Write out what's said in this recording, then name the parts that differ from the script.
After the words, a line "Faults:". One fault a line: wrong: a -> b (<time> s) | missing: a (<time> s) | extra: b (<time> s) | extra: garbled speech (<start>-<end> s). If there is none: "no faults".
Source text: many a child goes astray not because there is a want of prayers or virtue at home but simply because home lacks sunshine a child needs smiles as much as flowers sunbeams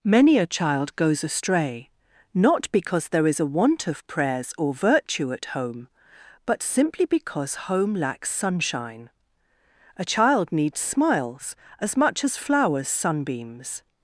many a child goes astray not because there is a want of prayers or virtue at home but simply because home lacks sunshine a child needs smiles as much as flowers sunbeams
Faults:
no faults